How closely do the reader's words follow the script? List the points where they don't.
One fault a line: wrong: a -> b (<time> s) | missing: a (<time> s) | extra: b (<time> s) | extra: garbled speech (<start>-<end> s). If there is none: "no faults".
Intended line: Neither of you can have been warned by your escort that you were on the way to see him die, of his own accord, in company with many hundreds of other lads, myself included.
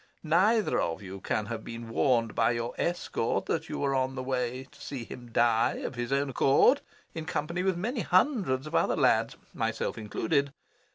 no faults